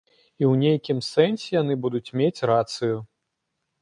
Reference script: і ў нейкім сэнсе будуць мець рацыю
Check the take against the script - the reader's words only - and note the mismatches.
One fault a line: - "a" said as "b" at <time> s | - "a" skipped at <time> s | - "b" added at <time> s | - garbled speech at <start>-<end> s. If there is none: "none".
- "яны" added at 1.6 s